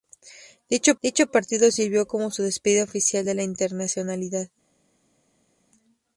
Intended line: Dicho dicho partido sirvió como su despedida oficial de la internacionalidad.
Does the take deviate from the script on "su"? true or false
false